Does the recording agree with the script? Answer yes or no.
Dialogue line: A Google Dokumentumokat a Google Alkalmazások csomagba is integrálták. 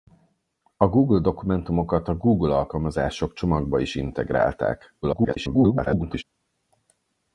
no